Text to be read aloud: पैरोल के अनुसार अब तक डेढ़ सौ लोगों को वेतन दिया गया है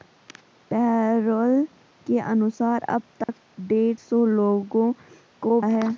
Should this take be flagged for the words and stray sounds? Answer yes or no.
yes